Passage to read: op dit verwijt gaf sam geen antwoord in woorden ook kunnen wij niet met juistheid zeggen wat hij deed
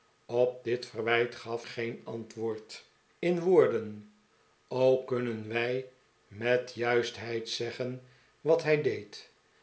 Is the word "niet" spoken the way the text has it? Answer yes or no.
no